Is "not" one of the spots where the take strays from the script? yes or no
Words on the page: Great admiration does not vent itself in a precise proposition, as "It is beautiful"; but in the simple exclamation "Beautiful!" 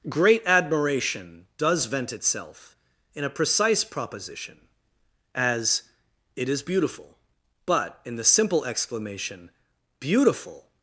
yes